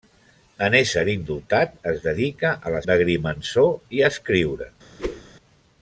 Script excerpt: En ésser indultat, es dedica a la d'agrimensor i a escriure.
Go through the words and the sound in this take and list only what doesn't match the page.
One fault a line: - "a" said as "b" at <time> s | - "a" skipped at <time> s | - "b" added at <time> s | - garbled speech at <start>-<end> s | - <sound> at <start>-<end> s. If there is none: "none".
- whoosh at 5.0-5.2 s